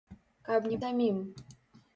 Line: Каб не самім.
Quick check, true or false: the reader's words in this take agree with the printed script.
true